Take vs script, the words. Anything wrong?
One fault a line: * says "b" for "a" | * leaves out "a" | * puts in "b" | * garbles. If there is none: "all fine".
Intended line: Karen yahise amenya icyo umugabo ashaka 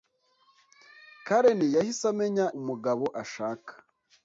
* leaves out "icyo"